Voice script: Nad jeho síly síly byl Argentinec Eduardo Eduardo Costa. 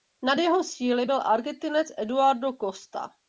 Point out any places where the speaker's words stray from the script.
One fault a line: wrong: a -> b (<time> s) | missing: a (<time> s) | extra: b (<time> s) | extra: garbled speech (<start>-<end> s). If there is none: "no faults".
missing: síly (1.1 s)
missing: Eduardo (2.5 s)